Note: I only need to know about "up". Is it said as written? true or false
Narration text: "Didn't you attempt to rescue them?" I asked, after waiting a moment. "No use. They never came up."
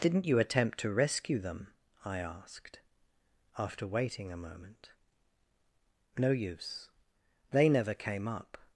true